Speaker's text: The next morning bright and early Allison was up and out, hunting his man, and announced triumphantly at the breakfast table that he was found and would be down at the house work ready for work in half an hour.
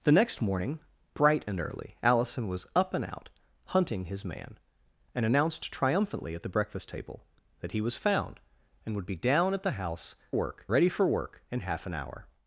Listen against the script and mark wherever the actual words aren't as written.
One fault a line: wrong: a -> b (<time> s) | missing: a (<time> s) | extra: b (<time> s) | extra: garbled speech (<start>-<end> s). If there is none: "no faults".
no faults